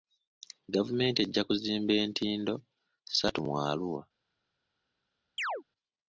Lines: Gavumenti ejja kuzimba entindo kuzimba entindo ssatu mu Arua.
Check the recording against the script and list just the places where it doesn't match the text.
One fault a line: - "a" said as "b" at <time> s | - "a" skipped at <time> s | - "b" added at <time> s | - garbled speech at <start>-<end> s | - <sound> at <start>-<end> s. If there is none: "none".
- "kuzimba entindo" skipped at 2.5 s
- chirp at 5.4-5.6 s